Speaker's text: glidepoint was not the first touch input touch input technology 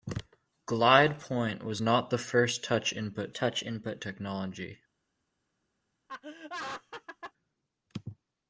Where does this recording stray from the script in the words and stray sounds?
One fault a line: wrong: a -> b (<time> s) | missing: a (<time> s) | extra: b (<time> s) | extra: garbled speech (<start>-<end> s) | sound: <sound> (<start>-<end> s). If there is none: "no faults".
sound: laugh (6.1-7.3 s)